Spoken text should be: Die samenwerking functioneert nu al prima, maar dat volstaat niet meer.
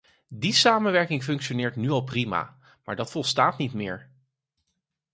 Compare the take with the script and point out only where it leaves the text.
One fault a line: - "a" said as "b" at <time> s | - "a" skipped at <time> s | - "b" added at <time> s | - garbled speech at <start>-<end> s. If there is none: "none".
none